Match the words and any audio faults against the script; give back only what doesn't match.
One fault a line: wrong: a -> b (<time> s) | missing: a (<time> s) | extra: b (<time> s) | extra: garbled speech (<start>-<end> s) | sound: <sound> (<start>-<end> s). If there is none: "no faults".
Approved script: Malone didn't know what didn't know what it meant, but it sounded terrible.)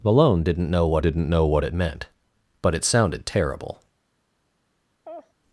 sound: laugh (5.0-5.3 s)